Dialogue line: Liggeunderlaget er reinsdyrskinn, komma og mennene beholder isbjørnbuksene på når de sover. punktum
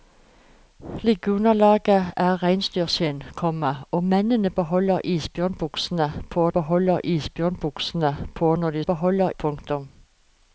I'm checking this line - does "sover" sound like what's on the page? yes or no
no